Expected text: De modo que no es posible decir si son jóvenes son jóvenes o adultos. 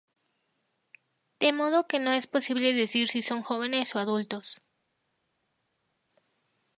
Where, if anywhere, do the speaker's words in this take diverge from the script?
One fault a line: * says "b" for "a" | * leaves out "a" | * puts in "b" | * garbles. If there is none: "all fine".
* leaves out "son jóvenes"